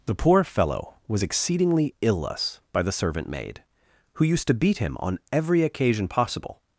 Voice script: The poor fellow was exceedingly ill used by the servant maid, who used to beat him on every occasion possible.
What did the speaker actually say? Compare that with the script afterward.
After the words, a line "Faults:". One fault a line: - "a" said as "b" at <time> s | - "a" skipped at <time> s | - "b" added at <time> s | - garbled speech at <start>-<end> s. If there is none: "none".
The poor fellow was exceedingly ill us by the servant maid, who used to beat him on every occasion possible.
Faults:
- "used" said as "us" at 2.3 s